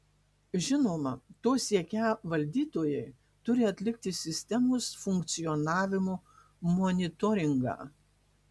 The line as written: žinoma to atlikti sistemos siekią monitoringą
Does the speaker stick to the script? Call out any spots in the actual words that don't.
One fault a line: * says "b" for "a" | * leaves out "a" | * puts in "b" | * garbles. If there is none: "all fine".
* puts in "siekią valdytojai turi"
* says "funkcionavimo" for "siekią"